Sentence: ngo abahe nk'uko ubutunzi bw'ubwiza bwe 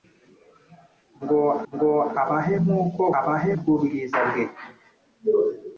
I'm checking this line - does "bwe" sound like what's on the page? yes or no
yes